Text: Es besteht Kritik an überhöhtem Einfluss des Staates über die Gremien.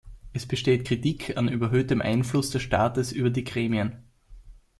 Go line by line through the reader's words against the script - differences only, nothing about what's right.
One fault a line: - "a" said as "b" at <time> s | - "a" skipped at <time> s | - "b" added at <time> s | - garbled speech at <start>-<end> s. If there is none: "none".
none